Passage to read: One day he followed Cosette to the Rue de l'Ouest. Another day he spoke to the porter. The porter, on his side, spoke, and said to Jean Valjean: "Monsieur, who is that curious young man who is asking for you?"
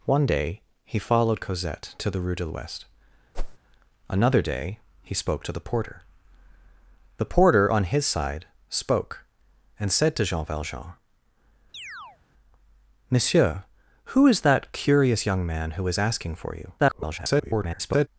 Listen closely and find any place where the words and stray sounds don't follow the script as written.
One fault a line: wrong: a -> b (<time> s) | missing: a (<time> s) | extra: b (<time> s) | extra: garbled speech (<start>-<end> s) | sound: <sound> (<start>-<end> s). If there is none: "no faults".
sound: whoosh (3.3-3.6 s)
sound: chirp (11.7-12.2 s)
extra: garbled speech (16.8-18.1 s)